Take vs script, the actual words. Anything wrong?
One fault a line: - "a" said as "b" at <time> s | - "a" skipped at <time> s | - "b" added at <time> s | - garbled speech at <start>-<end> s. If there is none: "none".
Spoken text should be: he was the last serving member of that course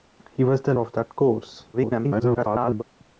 - "last serving member" skipped at 0.7 s
- garbled speech at 1.7-2.8 s